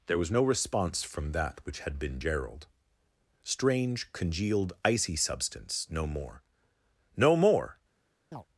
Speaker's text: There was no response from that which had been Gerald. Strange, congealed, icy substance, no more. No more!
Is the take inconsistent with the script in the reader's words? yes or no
no